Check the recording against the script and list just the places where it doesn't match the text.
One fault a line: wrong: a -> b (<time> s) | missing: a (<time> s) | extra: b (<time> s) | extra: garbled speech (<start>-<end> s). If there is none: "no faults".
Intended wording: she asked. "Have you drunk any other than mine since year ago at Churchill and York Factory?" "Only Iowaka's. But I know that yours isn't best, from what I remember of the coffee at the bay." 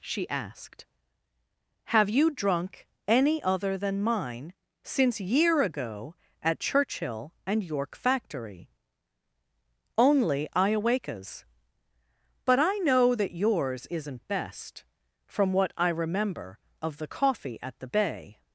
no faults